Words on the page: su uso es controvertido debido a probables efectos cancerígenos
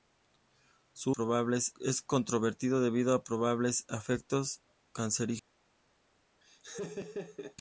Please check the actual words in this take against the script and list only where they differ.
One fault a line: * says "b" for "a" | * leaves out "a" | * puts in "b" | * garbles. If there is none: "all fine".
* says "probables" for "uso"